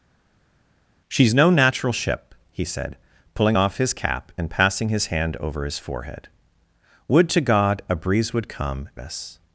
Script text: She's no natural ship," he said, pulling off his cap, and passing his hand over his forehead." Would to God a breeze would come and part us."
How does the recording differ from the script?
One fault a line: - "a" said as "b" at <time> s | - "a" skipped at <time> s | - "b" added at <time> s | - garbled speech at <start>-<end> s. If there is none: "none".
- "and part" skipped at 8.9 s